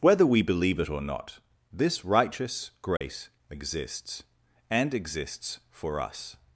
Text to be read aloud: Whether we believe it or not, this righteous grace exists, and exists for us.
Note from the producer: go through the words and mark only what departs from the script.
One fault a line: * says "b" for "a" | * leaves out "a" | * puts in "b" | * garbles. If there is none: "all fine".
all fine